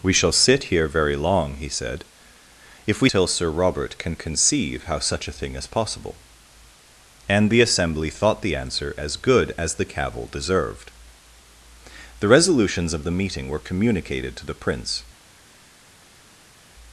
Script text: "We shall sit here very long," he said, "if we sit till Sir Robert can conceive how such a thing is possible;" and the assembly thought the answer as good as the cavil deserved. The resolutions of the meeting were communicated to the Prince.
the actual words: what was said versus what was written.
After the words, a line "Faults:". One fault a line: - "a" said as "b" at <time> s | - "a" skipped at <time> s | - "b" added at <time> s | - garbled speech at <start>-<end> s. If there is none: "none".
"We shall sit here very long," he said, "if we till Sir Robert can conceive how such a thing is possible;" and the assembly thought the answer as good as the cavil deserved. The resolutions of the meeting were communicated to the Prince.
Faults:
- "sit" skipped at 3.1 s